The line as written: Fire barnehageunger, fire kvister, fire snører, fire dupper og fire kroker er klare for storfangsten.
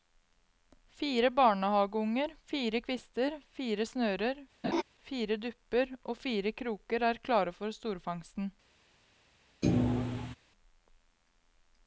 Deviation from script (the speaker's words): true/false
false